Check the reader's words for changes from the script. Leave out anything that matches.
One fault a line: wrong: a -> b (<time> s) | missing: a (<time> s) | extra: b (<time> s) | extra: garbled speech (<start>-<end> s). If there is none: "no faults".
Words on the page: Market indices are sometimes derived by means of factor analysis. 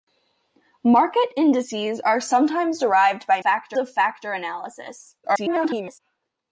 wrong: means -> factor (3.4 s)
extra: garbled speech (5.2-6.0 s)